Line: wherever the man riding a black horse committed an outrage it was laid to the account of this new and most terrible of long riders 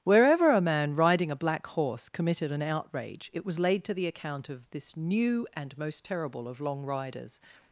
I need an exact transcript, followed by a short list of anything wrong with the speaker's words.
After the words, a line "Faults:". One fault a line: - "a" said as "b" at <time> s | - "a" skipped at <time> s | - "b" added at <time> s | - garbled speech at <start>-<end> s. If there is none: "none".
wherever a man riding a black horse committed an outrage it was laid to the account of this new and most terrible of long riders
Faults:
- "the" said as "a" at 0.5 s